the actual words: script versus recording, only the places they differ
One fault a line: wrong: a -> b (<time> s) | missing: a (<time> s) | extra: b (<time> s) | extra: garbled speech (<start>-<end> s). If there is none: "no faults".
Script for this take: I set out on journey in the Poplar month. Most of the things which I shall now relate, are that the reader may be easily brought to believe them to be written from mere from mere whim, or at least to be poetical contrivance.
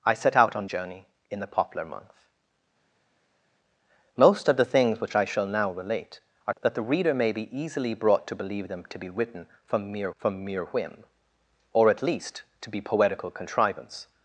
no faults